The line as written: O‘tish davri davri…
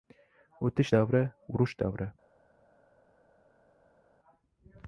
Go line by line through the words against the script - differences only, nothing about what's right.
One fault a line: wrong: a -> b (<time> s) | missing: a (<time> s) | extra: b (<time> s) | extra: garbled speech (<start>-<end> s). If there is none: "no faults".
extra: urush (1.6 s)